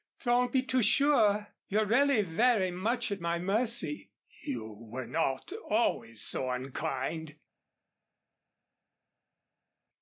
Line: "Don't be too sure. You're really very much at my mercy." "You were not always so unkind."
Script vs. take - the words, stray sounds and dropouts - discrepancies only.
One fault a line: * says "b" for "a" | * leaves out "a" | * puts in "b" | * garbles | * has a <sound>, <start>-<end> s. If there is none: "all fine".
all fine